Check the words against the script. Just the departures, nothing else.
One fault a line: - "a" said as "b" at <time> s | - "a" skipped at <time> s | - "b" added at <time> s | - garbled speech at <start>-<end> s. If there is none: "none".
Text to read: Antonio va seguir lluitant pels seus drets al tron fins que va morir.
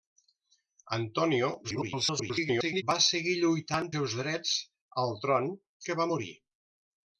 - garbled speech at 1.6-2.8 s
- "pels" skipped at 3.9 s
- "fins" skipped at 5.5 s